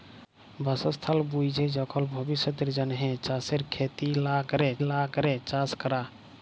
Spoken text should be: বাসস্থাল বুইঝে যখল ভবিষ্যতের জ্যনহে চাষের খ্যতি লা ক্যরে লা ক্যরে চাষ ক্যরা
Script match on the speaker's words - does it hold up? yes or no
yes